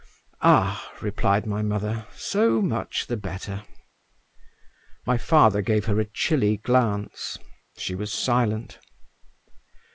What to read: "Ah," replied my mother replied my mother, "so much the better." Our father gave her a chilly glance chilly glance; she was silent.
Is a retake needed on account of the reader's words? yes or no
yes